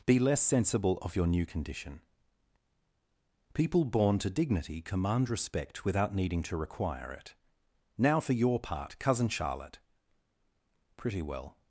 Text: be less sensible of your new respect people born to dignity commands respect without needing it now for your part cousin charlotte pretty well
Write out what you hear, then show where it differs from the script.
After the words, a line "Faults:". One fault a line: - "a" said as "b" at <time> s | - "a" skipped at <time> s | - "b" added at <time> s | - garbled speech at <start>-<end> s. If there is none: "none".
be less sensible of your new condition people born to dignity command respect without needing to require it now for your part cousin charlotte pretty well
Faults:
- "respect" said as "condition" at 1.4 s
- "commands" said as "command" at 4.8 s
- "to require" added at 6.4 s